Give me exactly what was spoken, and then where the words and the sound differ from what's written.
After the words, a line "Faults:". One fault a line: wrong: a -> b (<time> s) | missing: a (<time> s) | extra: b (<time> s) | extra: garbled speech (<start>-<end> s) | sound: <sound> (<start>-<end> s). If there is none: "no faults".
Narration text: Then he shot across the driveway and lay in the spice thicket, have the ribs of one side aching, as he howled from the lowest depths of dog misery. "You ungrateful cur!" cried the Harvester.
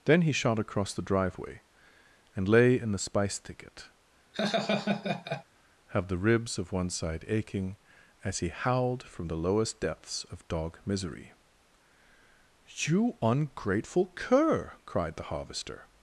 Then he shot across the driveway and lay in the spice thicket, have the ribs of one side aching, as he howled from the lowest depths of dog misery. "You ungrateful cur!" cried the Harvester.
Faults:
sound: laugh (4.3-5.4 s)